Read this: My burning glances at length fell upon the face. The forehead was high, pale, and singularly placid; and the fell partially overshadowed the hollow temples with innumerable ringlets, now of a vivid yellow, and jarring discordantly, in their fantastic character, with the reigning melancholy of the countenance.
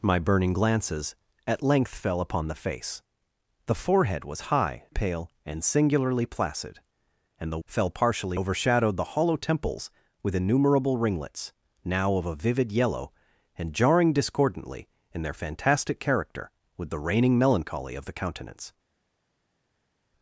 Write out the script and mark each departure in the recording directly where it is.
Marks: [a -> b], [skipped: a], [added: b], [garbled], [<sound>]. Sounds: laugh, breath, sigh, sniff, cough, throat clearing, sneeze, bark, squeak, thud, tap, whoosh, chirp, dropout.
My burning glances at length fell upon the face. The forehead was high, pale, and singularly placid; and the fell partially overshadowed the hollow temples with innumerable ringlets, now of a vivid yellow, and jarring discordantly, in their fantastic character, with the reigning melancholy of the countenance.